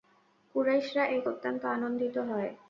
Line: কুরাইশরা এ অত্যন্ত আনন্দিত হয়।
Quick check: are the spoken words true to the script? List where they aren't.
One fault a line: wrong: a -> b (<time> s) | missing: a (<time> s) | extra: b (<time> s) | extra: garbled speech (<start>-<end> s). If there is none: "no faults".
no faults